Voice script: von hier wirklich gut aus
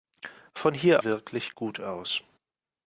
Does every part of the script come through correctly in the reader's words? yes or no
yes